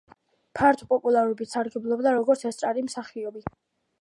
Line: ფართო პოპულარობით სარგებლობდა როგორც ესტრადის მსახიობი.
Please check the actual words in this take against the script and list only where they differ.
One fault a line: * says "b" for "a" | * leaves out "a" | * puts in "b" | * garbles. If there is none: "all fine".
all fine